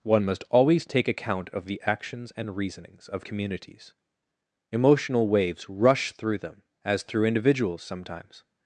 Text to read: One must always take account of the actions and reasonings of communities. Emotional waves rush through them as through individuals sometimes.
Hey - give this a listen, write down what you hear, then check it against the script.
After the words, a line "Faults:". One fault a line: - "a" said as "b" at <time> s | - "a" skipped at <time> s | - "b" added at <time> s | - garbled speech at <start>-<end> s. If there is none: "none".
One must always take account of the actions and reasonings of communities. Emotional waves rush through them as through individuals sometimes.
Faults:
none